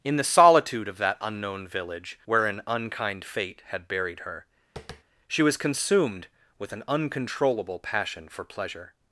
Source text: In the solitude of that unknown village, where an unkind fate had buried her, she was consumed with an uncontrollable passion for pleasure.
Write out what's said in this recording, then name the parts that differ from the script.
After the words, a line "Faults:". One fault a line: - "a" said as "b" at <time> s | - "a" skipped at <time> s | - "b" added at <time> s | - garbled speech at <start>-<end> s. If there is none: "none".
In the solitude of that unknown village, where an unkind fate had buried her, she was consumed with an uncontrollable passion for pleasure.
Faults:
none